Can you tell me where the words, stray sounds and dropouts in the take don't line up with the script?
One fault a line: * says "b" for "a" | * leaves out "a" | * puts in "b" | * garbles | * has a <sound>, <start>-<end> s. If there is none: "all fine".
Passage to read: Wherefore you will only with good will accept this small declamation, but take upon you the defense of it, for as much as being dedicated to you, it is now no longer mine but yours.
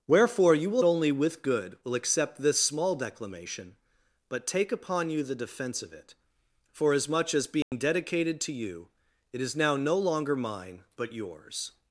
* has a dropout, 7.6-7.7 s